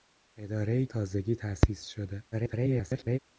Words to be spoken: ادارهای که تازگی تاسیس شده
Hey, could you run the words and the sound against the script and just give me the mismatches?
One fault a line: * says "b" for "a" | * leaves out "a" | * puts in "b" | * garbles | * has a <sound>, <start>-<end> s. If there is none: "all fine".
* leaves out "که"
* garbles